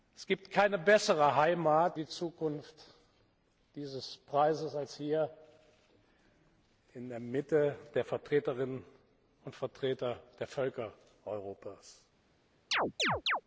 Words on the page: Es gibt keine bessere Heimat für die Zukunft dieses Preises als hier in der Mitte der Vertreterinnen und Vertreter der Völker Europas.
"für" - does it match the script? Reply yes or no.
no